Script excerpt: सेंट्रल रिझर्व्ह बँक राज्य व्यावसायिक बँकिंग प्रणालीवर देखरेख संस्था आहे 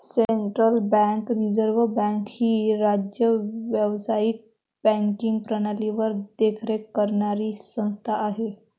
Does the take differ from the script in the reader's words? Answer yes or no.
yes